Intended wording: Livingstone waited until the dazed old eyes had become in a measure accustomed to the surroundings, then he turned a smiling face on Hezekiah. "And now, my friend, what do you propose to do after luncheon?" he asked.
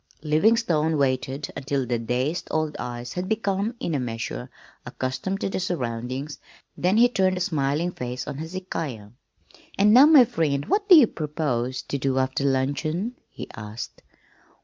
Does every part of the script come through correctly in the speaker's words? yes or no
yes